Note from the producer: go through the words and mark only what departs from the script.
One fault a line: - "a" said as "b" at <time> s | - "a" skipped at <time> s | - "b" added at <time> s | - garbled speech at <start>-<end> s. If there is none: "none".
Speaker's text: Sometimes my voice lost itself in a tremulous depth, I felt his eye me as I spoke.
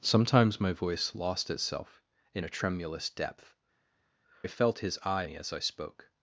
none